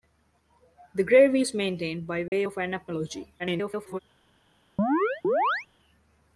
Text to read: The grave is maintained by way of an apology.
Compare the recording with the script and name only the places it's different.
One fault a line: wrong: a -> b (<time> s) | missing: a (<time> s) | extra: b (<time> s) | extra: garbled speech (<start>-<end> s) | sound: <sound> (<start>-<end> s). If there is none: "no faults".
sound: dropout (2.3-2.3 s)
extra: garbled speech (3.4-4.0 s)
sound: chirp (4.8-5.7 s)